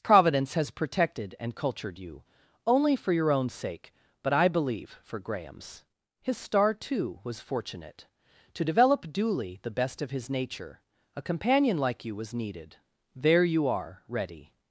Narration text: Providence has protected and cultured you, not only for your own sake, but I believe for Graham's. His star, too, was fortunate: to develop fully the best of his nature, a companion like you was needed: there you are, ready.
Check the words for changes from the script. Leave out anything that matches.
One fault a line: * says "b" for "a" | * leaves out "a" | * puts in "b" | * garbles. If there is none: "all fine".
* leaves out "not"
* says "duly" for "fully"